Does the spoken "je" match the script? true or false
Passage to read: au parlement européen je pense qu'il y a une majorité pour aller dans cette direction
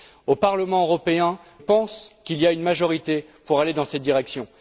false